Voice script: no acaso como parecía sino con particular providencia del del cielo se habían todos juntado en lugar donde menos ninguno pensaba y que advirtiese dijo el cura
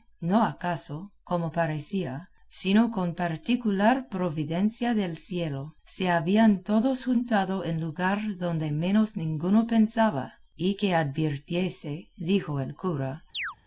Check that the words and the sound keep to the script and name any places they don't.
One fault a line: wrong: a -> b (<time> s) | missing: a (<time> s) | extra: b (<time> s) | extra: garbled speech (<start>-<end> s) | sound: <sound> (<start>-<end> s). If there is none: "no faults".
missing: del (5.2 s)
sound: chirp (13.3-13.6 s)